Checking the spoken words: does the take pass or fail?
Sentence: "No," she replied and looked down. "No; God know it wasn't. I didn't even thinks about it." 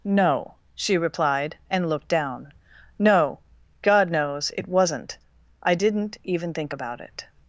fail